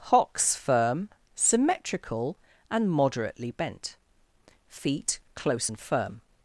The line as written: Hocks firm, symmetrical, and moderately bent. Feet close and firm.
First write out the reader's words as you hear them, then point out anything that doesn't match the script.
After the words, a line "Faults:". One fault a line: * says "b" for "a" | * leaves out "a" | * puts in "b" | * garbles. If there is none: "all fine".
Hocks firm, symmetrical, and moderately bent. Feet close and firm.
Faults:
all fine